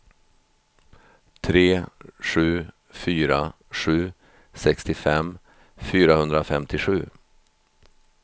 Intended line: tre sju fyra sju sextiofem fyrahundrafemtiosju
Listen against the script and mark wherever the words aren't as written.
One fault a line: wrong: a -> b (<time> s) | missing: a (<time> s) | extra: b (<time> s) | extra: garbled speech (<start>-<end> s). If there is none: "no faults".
no faults